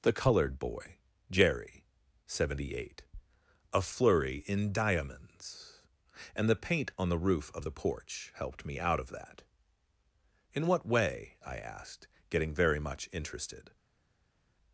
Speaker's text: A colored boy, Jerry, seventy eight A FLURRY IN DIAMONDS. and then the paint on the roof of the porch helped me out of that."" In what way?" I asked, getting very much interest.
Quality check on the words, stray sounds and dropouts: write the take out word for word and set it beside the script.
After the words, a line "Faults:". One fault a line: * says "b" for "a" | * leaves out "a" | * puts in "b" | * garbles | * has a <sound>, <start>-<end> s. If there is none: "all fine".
The colored boy, Jerry, seventy eight A FLURRY IN DIAMONDS. and the paint on the roof of the porch helped me out of that."" In what way?" I asked, getting very much interested.
Faults:
* says "The" for "A"
* leaves out "then"
* says "interested" for "interest"